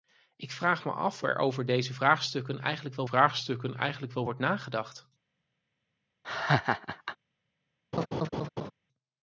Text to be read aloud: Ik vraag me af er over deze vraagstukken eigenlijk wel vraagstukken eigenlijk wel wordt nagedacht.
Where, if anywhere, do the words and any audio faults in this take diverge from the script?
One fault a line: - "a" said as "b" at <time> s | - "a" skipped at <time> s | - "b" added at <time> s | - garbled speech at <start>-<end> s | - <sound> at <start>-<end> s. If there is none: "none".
- laugh at 6.2-7.2 s
- laugh at 7.9-8.7 s